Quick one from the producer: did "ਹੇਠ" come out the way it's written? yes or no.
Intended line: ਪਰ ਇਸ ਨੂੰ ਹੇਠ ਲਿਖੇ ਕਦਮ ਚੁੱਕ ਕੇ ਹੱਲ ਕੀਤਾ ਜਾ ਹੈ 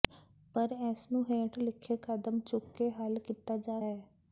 yes